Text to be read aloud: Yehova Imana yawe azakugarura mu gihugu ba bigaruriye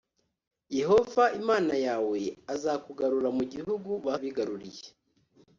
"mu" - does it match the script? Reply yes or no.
yes